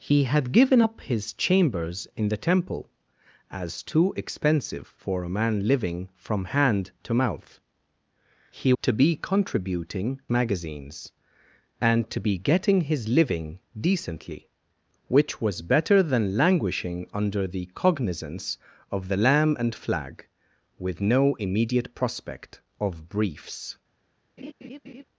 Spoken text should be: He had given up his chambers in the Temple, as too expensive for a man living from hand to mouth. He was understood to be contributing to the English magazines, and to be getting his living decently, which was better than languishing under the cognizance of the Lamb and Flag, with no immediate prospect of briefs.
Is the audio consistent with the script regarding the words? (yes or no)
no